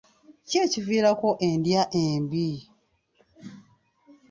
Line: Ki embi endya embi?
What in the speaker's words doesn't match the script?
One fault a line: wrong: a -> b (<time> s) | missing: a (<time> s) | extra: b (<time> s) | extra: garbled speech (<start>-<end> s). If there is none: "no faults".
wrong: embi -> ekiviirako (0.7 s)